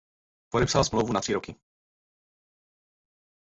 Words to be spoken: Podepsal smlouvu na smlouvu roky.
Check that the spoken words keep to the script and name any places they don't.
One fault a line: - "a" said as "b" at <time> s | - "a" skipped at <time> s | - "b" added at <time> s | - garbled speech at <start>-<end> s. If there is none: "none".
- "smlouvu" said as "tři" at 1.2 s